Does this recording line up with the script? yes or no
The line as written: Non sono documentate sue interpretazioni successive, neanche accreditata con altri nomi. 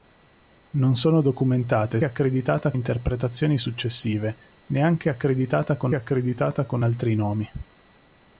no